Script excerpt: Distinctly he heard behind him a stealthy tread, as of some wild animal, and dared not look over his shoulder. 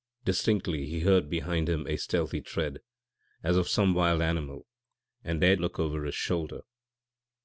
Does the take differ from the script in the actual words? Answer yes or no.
yes